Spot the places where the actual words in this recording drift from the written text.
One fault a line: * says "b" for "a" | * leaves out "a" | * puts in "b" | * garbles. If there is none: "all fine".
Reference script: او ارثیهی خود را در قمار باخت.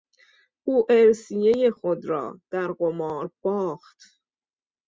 all fine